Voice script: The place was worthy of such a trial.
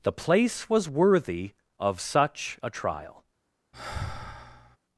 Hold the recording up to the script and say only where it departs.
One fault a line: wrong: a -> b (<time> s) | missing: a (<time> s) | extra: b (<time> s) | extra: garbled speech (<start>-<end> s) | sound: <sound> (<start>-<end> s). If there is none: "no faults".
sound: sigh (3.7-4.8 s)